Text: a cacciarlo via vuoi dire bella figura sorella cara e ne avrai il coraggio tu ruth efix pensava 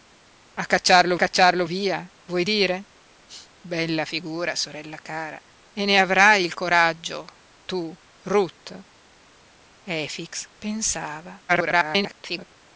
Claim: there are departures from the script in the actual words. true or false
true